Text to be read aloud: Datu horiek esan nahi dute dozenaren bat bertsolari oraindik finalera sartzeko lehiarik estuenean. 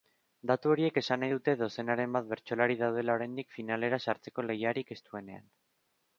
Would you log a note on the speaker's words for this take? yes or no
yes